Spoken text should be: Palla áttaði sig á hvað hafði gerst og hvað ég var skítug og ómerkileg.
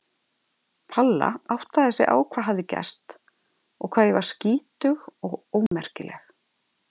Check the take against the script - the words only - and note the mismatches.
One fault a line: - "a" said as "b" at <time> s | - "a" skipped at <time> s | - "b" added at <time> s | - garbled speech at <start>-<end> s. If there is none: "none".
none